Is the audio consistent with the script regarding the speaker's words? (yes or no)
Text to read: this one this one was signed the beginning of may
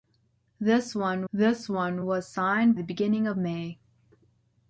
yes